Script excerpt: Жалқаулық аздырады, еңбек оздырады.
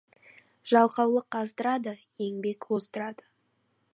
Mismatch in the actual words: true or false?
false